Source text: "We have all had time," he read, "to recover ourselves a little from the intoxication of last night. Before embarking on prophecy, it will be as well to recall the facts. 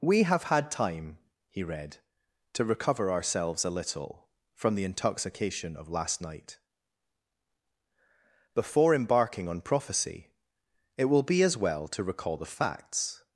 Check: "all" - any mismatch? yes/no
yes